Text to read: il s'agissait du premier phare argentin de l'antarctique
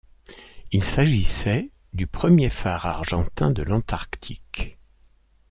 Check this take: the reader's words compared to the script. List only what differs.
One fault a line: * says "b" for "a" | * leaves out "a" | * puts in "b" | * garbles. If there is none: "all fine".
all fine